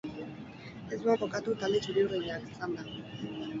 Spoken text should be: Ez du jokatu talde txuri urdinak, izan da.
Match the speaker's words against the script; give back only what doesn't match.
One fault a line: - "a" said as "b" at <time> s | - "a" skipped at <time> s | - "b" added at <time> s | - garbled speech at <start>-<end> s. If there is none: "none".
none